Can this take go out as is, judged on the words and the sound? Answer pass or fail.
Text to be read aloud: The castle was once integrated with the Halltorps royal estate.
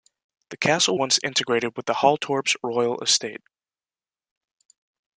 fail